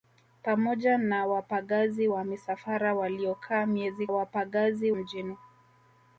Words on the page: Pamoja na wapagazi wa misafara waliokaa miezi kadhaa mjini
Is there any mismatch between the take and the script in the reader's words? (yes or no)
yes